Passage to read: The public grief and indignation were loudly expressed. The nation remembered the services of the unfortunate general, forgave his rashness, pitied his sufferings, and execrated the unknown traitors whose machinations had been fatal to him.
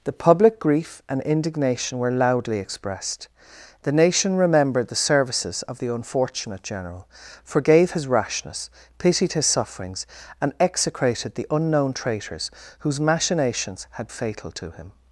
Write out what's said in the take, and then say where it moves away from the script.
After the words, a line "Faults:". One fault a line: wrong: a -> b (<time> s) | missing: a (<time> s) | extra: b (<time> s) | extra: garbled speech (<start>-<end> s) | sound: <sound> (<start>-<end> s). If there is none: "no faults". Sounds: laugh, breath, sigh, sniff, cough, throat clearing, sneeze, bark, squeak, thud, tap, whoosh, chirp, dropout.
The public grief and indignation were loudly expressed. The nation remembered the services of the unfortunate general, forgave his rashness, pitied his sufferings, and execrated the unknown traitors whose machinations had fatal to him.
Faults:
missing: been (14.1 s)